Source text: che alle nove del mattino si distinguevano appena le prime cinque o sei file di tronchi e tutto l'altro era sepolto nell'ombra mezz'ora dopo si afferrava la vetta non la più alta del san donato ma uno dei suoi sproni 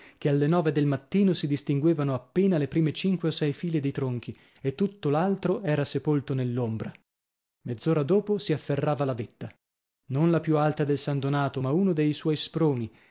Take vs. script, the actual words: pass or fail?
pass